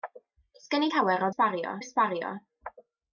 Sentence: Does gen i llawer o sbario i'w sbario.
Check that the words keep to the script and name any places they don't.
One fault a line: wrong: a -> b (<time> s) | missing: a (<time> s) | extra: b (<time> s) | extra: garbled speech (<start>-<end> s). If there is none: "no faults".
no faults